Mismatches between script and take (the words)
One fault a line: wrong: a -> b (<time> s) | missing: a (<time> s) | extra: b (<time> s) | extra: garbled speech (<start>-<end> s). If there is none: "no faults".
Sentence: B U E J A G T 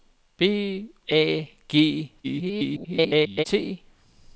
missing: U E J (0.9 s)
extra: garbled speech (2.2-3.4 s)